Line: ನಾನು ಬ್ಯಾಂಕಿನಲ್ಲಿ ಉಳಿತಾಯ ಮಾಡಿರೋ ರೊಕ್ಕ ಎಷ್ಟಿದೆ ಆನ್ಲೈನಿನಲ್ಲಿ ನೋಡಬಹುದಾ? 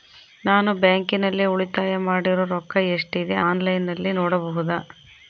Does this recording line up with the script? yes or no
yes